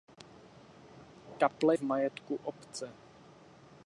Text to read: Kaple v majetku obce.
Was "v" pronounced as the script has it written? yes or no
yes